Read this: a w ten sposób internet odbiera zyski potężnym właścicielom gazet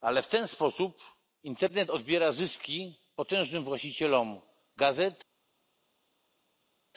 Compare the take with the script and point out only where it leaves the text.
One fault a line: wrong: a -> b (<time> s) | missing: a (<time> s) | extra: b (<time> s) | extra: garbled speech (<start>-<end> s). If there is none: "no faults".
wrong: a -> ale (0.0 s)